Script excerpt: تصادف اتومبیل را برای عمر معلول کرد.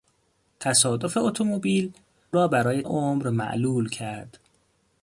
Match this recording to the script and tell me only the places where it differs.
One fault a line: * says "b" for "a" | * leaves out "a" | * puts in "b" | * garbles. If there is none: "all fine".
all fine